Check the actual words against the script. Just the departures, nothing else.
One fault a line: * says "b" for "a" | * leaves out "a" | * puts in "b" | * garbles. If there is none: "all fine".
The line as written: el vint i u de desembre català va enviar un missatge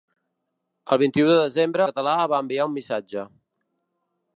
all fine